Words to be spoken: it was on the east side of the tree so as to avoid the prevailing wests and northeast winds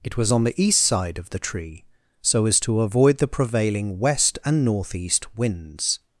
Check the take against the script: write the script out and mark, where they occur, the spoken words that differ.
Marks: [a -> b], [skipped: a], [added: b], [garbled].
it was on the east side of the tree so as to avoid the prevailing [wests -> west] and northeast winds